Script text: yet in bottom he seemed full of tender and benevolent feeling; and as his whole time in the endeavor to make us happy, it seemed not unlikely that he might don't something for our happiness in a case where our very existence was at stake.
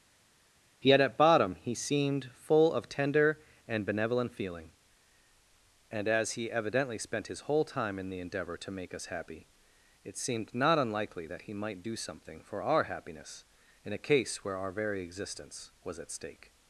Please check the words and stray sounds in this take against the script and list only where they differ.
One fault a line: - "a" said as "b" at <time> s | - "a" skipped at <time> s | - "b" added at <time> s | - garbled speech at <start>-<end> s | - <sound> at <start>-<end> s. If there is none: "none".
- "in" said as "at" at 1.0 s
- "he evidently spent" added at 6.3 s
- "don't" said as "do" at 11.8 s